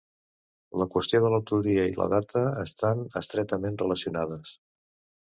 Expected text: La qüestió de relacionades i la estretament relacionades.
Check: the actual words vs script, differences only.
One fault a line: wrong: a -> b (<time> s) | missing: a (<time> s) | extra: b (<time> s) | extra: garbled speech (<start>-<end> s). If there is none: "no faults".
wrong: relacionades -> l'autoria (1.3 s)
extra: data estan (2.1 s)